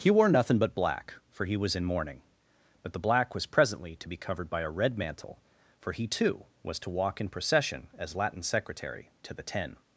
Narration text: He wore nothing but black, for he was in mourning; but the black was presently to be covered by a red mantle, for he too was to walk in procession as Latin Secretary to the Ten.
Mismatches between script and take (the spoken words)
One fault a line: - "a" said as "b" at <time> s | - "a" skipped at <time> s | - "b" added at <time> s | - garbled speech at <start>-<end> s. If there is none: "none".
none